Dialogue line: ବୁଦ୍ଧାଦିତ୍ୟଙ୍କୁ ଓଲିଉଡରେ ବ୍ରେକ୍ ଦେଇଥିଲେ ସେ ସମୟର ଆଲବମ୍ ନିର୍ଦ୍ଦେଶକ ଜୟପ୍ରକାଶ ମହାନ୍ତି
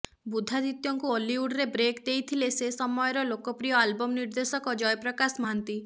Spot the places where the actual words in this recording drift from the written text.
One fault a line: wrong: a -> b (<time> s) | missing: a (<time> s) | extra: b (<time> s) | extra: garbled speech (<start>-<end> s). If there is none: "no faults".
extra: ଲୋକପ୍ରିୟ (3.3 s)